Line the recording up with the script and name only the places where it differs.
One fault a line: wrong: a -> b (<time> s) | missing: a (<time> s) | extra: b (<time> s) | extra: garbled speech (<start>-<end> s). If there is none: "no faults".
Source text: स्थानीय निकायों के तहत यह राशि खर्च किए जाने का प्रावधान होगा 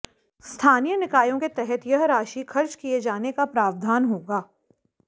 no faults